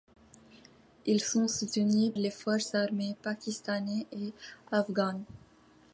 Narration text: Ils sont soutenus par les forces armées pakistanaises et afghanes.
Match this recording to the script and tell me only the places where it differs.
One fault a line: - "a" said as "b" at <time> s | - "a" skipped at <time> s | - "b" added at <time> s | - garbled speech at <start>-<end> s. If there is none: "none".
- "par" skipped at 2.1 s